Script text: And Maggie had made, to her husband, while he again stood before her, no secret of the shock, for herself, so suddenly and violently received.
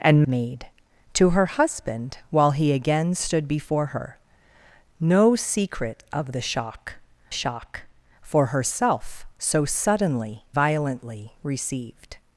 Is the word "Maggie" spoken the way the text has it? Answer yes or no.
no